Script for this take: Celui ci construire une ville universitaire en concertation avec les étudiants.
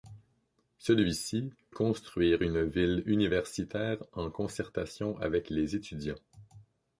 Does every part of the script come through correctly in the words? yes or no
yes